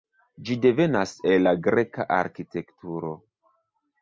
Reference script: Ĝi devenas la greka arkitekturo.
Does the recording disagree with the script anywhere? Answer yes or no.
yes